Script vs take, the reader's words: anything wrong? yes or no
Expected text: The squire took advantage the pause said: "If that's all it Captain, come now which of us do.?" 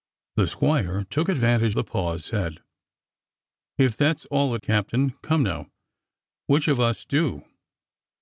no